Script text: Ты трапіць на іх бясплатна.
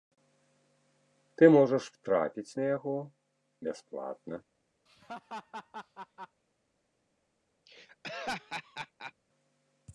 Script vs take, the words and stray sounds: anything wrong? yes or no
yes